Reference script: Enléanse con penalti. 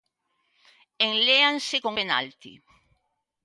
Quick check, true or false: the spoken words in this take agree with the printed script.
true